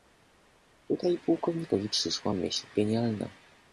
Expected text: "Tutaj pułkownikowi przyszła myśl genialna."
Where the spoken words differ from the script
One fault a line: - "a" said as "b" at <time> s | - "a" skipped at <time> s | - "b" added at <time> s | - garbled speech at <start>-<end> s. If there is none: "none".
none